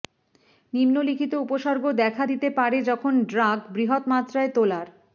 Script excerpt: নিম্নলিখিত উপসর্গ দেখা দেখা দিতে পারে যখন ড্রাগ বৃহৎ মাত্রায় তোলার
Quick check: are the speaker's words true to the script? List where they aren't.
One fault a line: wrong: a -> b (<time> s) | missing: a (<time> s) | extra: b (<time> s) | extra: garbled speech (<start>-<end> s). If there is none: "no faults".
missing: দেখা (2.2 s)